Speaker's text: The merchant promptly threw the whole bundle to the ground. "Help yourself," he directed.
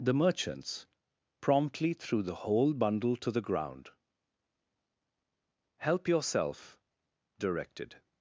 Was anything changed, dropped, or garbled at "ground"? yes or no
no